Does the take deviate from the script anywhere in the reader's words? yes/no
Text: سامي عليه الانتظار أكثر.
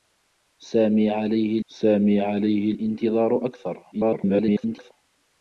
yes